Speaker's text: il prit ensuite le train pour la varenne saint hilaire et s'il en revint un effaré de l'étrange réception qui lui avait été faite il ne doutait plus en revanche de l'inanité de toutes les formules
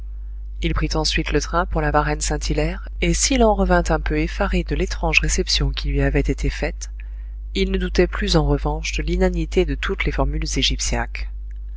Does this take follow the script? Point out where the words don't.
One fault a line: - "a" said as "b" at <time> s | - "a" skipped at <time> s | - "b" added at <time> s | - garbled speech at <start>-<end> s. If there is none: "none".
- "peu" added at 4.0 s